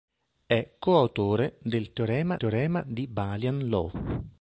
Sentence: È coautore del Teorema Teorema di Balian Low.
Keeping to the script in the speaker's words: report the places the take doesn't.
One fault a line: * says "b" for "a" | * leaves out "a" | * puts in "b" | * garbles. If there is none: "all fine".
all fine